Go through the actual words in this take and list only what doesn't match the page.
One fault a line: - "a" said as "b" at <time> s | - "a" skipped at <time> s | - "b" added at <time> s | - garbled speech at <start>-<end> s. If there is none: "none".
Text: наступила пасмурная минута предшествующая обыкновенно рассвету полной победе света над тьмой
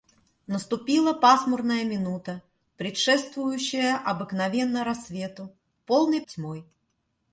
- "победе света над" skipped at 6.2 s